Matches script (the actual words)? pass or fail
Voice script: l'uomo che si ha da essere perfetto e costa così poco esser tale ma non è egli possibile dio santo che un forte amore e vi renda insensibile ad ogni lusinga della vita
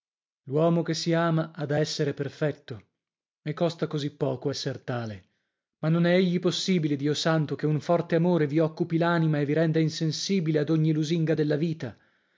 fail